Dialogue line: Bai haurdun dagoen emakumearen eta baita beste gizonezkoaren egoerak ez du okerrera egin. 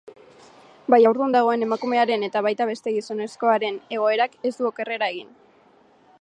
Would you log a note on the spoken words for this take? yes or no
no